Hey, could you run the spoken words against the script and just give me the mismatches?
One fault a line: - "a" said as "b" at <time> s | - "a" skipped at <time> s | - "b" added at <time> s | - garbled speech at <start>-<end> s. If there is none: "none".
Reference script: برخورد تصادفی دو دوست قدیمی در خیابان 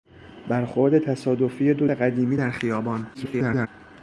- "دوست" skipped at 1.9 s
- garbled speech at 3.1-3.7 s